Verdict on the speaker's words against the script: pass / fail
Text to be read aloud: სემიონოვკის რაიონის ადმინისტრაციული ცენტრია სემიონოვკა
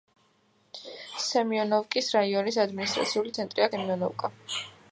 pass